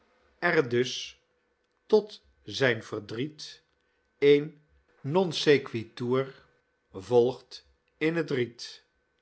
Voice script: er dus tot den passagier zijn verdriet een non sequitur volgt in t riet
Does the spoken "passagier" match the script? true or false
false